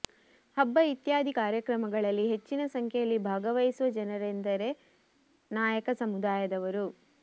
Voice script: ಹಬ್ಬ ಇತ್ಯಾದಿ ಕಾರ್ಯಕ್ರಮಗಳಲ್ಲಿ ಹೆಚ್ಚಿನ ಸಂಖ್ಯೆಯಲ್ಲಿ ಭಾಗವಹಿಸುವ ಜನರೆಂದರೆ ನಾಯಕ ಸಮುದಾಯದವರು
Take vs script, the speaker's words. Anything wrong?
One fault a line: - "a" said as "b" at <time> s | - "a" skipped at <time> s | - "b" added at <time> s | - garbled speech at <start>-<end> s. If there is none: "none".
none